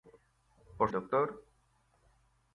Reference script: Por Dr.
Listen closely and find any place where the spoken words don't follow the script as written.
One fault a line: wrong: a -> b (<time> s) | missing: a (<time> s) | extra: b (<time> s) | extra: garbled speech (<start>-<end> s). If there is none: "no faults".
no faults